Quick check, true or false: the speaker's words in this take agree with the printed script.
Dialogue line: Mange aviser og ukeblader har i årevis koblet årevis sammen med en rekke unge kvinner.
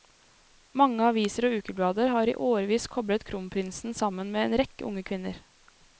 false